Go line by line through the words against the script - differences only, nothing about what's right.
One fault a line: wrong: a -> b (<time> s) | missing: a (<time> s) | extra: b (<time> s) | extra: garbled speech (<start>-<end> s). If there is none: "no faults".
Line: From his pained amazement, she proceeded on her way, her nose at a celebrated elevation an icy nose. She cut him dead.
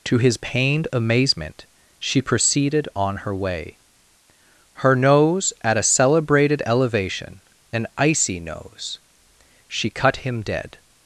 wrong: From -> To (0.1 s)